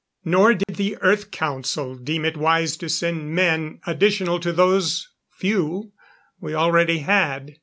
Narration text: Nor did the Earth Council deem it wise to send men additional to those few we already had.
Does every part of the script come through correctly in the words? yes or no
yes